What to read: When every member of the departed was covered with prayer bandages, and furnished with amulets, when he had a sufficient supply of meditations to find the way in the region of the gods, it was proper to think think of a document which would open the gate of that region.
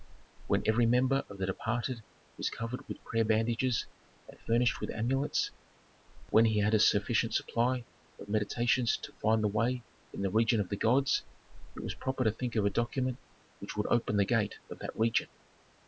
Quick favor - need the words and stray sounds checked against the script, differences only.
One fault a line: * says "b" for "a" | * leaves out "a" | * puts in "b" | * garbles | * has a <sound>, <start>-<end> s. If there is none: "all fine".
* leaves out "think"